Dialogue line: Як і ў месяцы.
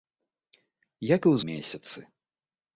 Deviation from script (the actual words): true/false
false